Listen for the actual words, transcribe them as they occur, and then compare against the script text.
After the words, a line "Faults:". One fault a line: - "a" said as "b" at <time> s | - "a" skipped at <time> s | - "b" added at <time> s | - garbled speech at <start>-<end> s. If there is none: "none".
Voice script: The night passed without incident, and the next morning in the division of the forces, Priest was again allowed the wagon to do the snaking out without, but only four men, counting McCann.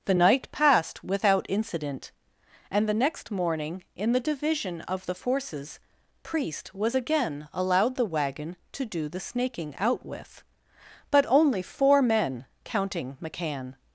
The night passed without incident, and the next morning in the division of the forces, Priest was again allowed the wagon to do the snaking out with, but only four men, counting McCann.
Faults:
- "without" said as "with" at 10.0 s